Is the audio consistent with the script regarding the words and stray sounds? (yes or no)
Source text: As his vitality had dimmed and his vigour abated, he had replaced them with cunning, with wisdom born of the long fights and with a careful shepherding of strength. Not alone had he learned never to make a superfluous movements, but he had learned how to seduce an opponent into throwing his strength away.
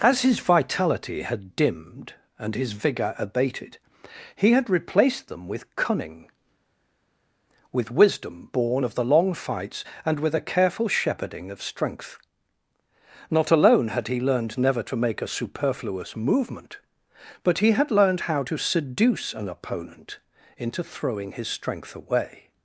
no